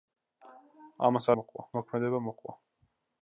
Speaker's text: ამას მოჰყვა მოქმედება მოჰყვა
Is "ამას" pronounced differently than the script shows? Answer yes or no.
no